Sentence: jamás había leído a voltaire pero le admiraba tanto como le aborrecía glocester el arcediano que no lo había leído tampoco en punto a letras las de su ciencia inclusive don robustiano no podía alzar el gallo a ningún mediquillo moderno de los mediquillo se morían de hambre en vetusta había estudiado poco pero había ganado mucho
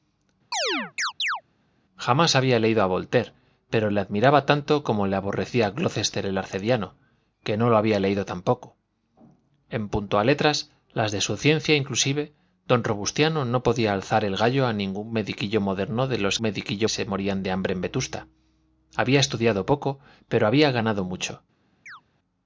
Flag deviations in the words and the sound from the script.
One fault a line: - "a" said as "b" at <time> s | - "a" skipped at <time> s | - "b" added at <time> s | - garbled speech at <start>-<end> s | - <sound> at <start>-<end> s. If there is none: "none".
- chirp at 0.5-1.4 s
- chirp at 21.9-22.0 s